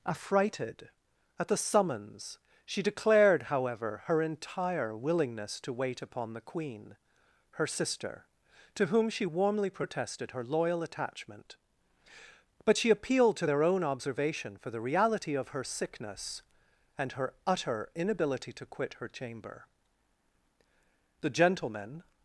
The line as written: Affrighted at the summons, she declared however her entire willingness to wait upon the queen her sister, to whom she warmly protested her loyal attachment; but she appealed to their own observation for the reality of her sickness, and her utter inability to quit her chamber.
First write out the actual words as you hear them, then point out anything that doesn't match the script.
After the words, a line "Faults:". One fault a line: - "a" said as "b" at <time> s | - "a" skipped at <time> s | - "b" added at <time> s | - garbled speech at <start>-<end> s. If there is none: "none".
Affrighted at the summons, she declared however her entire willingness to wait upon the queen her sister, to whom she warmly protested her loyal attachment; but she appealed to their own observation for the reality of her sickness, and her utter inability to quit her chamber. The gentlemen
Faults:
- "The gentlemen" added at 21.2 s